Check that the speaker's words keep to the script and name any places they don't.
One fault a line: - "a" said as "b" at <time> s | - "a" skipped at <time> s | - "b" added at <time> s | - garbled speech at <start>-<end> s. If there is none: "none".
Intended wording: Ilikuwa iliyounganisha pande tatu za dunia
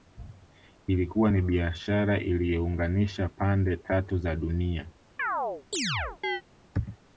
- "ni biashara" added at 1.3 s